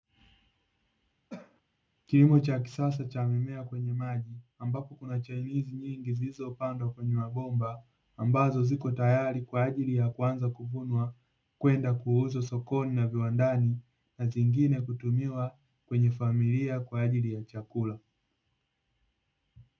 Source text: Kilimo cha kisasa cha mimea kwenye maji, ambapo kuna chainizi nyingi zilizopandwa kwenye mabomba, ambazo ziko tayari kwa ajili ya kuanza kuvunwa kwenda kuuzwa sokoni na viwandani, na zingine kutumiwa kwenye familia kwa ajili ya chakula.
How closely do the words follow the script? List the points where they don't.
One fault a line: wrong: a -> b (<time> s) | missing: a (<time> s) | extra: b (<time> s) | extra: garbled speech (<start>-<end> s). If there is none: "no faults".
no faults